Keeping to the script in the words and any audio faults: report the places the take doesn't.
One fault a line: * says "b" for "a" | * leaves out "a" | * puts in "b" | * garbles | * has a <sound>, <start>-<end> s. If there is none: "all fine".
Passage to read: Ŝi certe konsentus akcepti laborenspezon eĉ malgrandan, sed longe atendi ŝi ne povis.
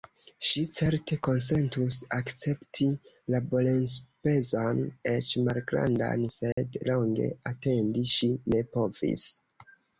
* has a dropout, 6.5-6.6 s